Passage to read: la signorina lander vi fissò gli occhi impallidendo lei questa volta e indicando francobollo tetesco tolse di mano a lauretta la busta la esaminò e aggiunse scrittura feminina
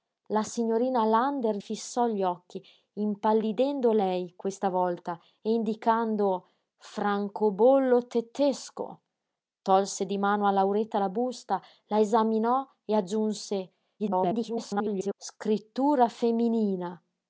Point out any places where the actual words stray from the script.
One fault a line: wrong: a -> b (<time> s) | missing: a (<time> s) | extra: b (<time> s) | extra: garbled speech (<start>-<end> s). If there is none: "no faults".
missing: vi (1.6 s)
extra: garbled speech (14.0-15.1 s)